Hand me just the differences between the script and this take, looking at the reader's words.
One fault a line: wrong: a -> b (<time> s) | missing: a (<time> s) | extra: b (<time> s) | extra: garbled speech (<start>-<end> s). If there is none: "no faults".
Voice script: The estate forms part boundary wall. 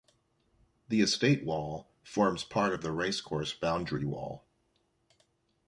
extra: wall (1.4 s)
extra: of the racecourse (2.7 s)